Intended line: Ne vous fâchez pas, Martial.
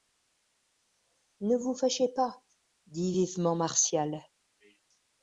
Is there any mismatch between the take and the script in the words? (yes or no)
yes